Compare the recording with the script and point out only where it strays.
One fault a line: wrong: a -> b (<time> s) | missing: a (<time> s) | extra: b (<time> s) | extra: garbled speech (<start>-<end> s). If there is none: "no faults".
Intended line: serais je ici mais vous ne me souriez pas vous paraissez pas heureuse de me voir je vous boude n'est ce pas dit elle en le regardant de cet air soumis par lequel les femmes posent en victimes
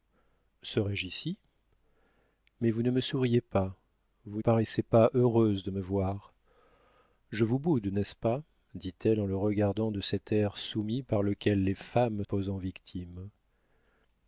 no faults